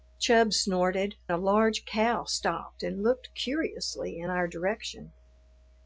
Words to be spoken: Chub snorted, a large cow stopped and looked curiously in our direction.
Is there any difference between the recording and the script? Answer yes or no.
no